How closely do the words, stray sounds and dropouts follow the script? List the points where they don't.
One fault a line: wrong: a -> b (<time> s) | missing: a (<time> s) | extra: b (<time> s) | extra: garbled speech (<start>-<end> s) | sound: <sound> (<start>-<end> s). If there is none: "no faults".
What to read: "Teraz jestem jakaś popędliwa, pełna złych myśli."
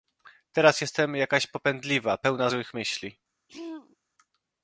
sound: throat clearing (3.5-4.0 s)